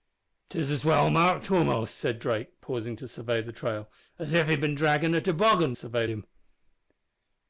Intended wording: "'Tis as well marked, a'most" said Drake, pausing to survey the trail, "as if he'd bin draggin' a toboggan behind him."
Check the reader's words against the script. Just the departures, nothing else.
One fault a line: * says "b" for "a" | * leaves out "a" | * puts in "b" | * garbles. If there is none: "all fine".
* says "survey" for "behind"